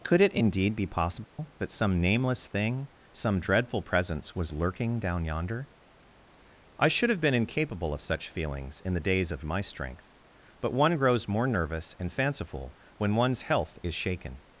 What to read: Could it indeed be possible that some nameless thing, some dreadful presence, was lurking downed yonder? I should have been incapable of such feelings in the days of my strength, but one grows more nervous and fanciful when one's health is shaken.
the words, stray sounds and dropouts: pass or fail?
fail